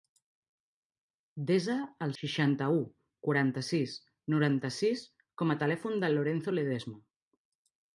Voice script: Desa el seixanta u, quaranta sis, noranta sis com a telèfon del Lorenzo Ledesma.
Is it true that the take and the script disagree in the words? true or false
false